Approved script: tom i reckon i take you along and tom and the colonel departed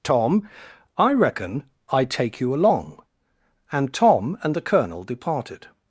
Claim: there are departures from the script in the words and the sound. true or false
false